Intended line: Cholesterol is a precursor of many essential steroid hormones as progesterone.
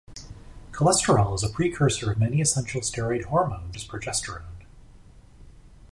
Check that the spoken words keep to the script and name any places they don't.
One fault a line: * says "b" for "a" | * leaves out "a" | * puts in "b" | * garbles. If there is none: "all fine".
all fine